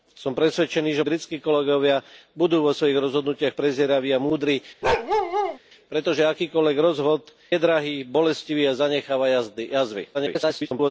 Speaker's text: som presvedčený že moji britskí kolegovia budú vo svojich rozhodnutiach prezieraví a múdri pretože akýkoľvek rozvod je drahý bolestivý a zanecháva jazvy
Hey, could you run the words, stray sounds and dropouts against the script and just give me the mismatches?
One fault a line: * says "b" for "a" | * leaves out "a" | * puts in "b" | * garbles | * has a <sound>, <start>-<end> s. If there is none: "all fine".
* leaves out "moji"
* has a bark, 4.8-5.6 s
* leaves out "je"
* garbles